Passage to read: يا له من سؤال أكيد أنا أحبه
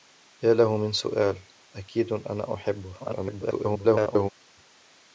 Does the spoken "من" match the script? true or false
true